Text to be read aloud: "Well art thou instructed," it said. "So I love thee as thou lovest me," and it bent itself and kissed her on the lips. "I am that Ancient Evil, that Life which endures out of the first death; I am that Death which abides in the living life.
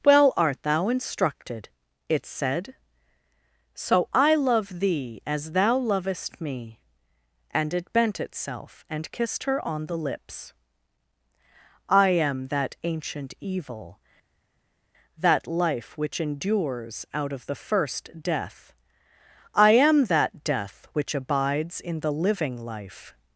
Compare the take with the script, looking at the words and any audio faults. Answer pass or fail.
pass